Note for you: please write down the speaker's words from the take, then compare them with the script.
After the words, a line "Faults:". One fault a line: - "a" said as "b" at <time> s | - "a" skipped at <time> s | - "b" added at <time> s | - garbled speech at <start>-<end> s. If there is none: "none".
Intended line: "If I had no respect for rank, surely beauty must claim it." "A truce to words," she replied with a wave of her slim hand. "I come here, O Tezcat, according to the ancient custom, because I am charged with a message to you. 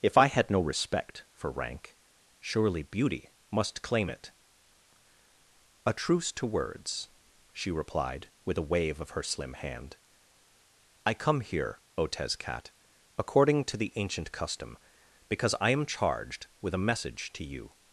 "If I had no respect for rank, surely beauty must claim it." "A truce to words," she replied with a wave of her slim hand. "I come here, O Tezcat, according to the ancient custom, because I am charged with a message to you.
Faults:
none